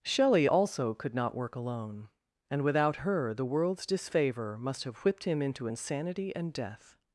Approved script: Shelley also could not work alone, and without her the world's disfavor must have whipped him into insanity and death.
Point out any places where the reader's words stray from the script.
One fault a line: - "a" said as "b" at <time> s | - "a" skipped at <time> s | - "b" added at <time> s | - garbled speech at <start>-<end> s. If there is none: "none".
none